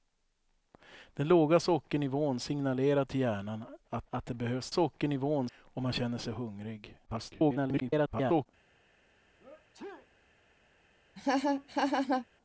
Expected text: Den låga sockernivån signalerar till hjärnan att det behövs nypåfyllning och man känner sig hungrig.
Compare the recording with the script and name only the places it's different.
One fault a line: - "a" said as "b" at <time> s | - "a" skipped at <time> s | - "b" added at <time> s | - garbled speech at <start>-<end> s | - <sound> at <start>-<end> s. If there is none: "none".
- "att" added at 4.1 s
- "nypåfyllning" said as "sockernivån" at 4.7 s
- garbled speech at 7.1-8.5 s
- sneeze at 9.4-10.1 s
- laugh at 11.2-12.3 s